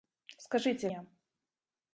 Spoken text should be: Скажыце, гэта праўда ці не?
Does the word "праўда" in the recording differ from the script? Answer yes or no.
yes